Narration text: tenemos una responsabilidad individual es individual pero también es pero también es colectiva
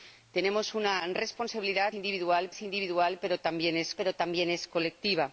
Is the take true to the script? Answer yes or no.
yes